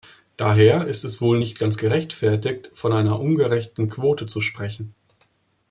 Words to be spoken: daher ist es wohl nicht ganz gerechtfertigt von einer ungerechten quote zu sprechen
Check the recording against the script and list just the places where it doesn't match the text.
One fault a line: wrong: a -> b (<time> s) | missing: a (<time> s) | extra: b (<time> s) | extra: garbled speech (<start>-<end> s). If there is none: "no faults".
no faults